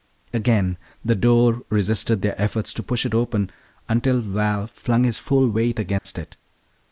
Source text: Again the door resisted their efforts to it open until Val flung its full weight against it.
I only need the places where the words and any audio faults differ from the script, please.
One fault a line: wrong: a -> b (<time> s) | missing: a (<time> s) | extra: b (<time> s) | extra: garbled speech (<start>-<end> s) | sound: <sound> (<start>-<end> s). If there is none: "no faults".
extra: push (2.8 s)
wrong: its -> his (5.0 s)
sound: dropout (6.0-6.1 s)